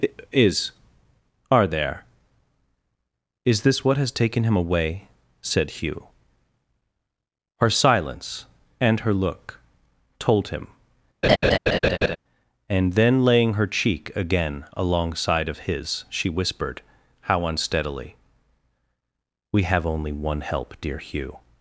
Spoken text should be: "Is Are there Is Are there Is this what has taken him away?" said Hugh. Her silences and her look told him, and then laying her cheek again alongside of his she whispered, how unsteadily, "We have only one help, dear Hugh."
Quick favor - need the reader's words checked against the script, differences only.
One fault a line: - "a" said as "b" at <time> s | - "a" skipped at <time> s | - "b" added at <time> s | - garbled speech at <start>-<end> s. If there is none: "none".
- "Are there Is" skipped at 3.6 s
- "silences" said as "silence" at 7.7 s